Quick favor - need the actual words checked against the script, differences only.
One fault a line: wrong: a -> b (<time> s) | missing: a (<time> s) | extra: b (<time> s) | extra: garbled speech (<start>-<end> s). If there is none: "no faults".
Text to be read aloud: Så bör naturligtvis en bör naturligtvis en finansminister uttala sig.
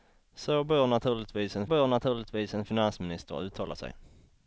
no faults